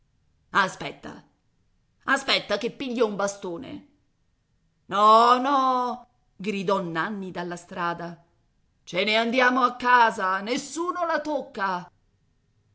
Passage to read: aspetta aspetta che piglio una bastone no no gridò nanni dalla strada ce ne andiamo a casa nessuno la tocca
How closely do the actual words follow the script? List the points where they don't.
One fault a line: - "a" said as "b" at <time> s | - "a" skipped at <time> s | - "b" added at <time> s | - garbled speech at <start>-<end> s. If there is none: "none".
- "una" said as "un" at 3.1 s